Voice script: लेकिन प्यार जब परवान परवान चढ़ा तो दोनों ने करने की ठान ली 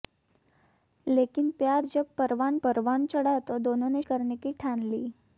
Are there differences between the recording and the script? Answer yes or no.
no